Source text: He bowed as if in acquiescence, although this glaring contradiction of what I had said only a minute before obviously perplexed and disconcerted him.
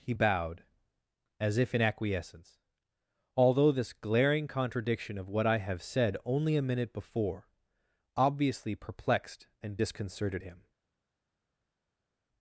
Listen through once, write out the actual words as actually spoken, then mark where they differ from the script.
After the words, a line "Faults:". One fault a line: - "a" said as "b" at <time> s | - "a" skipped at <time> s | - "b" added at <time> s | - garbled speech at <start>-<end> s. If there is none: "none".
He bowed as if in acquiescence, although this glaring contradiction of what I have said only a minute before obviously perplexed and disconcerted him.
Faults:
- "had" said as "have" at 5.6 s